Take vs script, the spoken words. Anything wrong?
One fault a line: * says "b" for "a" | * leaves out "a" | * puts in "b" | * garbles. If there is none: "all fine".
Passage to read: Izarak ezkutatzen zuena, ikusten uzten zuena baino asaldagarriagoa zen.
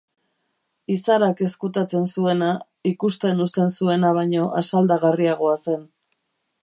all fine